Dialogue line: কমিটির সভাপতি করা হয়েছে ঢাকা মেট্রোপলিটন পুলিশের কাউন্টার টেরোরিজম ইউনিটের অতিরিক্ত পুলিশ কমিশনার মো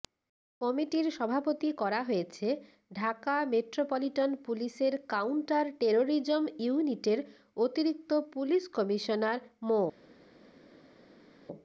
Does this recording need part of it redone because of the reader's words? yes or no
no